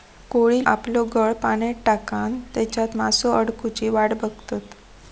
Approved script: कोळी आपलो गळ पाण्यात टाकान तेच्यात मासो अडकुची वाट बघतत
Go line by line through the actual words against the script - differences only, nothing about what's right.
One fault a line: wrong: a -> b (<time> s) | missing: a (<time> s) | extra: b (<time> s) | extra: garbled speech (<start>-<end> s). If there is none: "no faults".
no faults